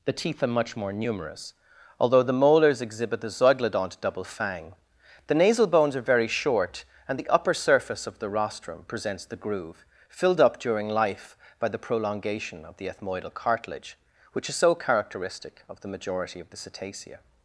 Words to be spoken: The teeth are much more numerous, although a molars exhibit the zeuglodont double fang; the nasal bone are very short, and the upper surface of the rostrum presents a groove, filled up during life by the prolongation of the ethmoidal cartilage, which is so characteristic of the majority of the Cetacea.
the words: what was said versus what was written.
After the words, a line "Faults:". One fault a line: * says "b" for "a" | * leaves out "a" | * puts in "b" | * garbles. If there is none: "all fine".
The teeth are much more numerous, although the molars exhibit the zeuglodont double fang; the nasal bones are very short, and the upper surface of the rostrum presents the groove, filled up during life by the prolongation of the ethmoidal cartilage, which is so characteristic of the majority of the Cetacea.
Faults:
* says "the" for "a"
* says "bones" for "bone"
* says "the" for "a"